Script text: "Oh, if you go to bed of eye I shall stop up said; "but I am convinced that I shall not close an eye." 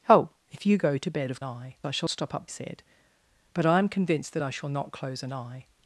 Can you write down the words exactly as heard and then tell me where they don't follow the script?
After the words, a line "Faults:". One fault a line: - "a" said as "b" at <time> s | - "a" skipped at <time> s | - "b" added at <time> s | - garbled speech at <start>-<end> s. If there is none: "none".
"Oh, if you go to bed of eye I shall stop up said; "but I am convinced that I shall not close an eye."
Faults:
none